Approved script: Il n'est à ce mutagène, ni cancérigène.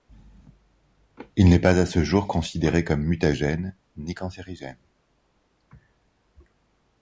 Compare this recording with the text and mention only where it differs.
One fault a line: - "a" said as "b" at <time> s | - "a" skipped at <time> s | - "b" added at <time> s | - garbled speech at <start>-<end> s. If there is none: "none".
- "pas" added at 1.6 s
- "jour considéré comme" added at 2.0 s